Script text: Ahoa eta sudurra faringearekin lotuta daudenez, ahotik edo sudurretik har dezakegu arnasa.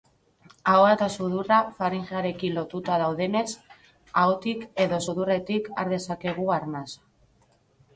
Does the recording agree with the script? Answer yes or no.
yes